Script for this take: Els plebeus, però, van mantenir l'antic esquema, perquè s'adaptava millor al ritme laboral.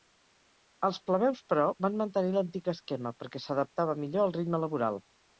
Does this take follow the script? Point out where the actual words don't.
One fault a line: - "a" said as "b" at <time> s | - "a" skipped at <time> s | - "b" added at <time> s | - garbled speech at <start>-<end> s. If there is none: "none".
none